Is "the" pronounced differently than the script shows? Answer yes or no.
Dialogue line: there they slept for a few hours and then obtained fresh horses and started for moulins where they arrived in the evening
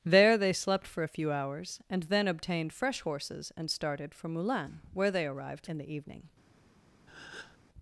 no